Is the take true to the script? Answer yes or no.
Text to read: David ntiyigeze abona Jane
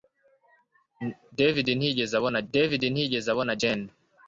no